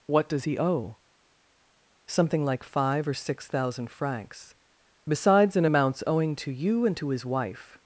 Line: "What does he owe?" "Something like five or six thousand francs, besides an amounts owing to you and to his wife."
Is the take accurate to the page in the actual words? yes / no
yes